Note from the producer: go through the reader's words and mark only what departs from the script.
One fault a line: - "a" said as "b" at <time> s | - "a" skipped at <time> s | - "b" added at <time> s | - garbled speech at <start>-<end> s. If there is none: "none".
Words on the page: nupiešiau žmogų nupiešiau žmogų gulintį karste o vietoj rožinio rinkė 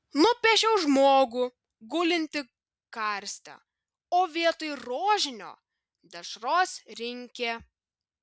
- "nupiešiau žmogų" skipped at 1.4 s
- "dešros" added at 6.1 s